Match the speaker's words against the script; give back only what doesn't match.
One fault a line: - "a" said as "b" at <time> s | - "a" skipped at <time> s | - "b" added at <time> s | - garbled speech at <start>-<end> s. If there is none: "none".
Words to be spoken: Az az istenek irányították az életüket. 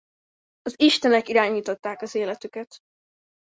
- "az" skipped at 0.7 s